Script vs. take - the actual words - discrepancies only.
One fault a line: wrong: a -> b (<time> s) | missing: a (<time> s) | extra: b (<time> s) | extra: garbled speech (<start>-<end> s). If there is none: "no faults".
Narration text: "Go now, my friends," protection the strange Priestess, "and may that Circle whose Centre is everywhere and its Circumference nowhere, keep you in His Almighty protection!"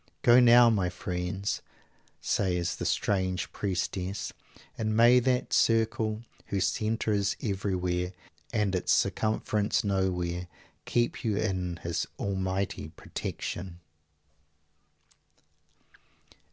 wrong: protection -> says (2.2 s)